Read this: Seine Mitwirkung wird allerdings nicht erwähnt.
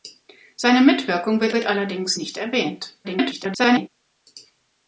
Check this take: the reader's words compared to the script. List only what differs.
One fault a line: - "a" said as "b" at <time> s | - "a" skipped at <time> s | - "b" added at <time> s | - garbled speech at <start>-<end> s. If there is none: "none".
- "wird" added at 1.5 s
- garbled speech at 3.0-3.9 s